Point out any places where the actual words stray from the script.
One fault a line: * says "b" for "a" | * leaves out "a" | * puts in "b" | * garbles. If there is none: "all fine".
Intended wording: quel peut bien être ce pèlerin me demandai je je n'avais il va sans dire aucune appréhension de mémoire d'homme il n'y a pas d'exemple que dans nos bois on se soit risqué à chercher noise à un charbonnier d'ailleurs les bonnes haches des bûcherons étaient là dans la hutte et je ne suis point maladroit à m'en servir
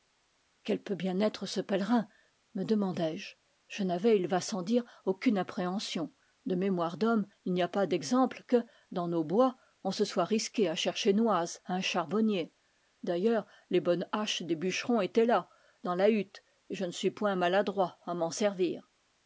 all fine